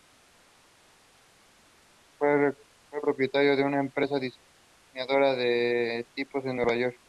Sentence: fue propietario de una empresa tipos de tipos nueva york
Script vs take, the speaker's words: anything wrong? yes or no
yes